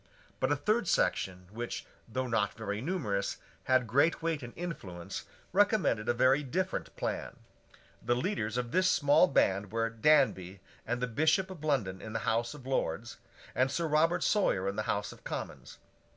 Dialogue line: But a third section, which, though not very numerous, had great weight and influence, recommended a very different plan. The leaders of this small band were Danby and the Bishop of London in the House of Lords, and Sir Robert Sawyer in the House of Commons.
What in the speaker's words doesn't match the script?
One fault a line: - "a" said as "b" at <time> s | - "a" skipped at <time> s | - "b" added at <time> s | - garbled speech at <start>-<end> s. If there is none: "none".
none